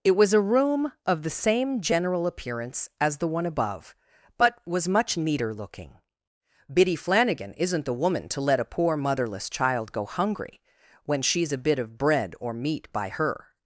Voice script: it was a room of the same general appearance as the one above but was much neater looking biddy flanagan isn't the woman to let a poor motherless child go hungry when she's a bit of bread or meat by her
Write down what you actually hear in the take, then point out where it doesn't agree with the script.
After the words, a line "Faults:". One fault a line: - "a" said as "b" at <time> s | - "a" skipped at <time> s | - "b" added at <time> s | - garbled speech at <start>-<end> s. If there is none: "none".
it was a room of the same general appearance as the one above but was much neater looking biddy flanagan isn't the woman to let a poor motherless child go hungry when she's a bit of bread or meat by her
Faults:
none